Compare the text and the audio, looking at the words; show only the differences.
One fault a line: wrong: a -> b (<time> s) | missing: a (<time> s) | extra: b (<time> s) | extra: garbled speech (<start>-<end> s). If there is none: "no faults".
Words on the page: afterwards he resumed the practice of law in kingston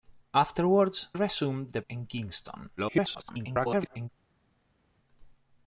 missing: he (1.1 s)
missing: practice of law (1.8 s)
extra: garbled speech (2.8-4.1 s)